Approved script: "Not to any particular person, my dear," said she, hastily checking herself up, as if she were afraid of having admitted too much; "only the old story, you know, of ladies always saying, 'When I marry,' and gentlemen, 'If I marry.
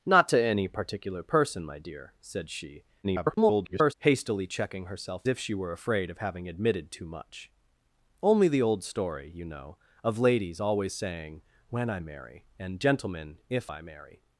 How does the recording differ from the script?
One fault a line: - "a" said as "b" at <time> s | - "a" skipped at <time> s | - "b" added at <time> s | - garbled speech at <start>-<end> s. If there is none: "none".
- garbled speech at 3.0-3.9 s
- "up as" skipped at 5.3 s